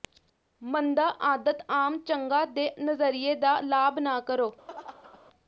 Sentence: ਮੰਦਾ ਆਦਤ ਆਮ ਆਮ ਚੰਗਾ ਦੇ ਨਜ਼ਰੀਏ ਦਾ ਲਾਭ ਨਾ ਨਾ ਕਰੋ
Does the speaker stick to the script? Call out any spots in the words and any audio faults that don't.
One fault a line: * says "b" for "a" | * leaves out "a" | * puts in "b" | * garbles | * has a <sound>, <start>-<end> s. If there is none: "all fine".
* leaves out "ਆਮ"
* leaves out "ਨਾ"
* has a laugh, 4.7-5.2 s